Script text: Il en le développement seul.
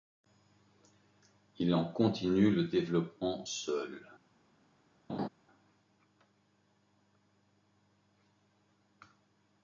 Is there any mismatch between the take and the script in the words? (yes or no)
yes